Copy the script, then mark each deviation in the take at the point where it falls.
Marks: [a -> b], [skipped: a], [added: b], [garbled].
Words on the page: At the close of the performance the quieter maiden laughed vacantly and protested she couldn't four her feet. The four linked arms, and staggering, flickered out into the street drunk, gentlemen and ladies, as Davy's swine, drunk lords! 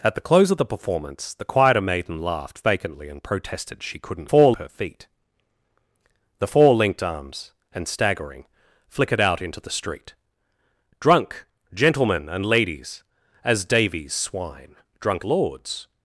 At the close of the performance the quieter maiden laughed vacantly and protested she couldn't four her feet. The four linked arms, and staggering, flickered out into the street drunk, gentlemen and ladies, as Davy's swine, drunk lords!